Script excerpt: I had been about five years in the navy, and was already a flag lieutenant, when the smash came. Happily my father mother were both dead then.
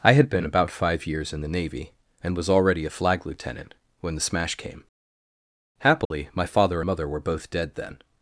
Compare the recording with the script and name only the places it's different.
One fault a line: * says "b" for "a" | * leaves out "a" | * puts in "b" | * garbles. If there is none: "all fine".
all fine